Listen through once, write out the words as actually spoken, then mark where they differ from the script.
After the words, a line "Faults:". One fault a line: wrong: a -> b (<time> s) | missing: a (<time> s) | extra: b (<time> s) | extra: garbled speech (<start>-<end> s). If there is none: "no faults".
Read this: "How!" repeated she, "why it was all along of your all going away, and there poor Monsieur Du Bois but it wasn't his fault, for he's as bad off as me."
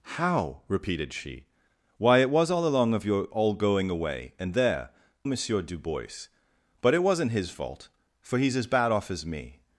"How!" repeated she, "why it was all along of your all going away, and there Monsieur Du Bois but it wasn't his fault, for he's as bad off as me."
Faults:
missing: poor (4.9 s)